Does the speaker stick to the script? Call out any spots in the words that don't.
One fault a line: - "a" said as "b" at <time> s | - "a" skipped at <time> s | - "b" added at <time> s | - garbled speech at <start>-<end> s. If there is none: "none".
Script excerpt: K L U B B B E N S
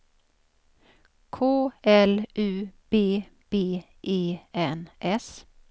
- "B" skipped at 3.8 s